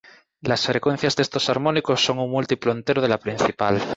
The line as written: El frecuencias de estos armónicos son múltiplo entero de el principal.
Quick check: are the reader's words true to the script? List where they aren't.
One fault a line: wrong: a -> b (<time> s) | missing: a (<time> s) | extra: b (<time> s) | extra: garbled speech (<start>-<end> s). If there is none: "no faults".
wrong: El -> Las (0.4 s)
extra: un (2.2 s)
wrong: el -> la (3.1 s)